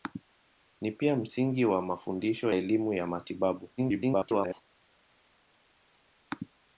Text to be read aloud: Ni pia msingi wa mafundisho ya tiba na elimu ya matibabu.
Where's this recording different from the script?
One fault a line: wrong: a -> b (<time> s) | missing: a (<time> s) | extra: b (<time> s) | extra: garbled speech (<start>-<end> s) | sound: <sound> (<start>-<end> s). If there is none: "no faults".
missing: ya tiba na (2.5 s)
extra: garbled speech (3.8-4.6 s)